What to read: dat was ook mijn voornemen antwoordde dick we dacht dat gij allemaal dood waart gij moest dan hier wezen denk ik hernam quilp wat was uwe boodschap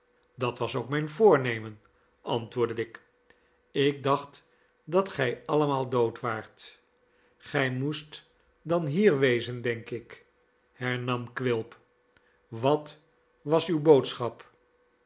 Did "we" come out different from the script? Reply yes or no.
yes